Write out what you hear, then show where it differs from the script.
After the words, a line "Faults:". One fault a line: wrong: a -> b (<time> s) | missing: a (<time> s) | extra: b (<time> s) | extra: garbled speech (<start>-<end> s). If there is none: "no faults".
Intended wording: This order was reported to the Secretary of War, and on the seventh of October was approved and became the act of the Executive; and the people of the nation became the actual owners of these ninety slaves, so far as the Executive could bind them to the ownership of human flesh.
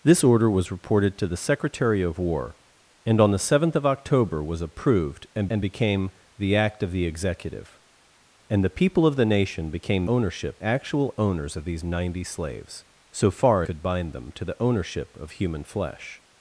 This order was reported to the Secretary of War, and on the seventh of October was approved and and became the act of the Executive; and the people of the nation became ownership actual owners of these ninety slaves, so far could bind them to the ownership of human flesh.
Faults:
extra: and (5.5 s)
wrong: the -> ownership (10.1 s)
missing: as the Executive (13.6 s)